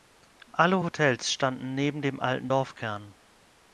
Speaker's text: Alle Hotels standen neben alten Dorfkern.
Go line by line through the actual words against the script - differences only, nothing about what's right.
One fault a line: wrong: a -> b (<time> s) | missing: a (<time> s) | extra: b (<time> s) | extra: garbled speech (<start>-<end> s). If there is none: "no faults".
extra: dem (2.0 s)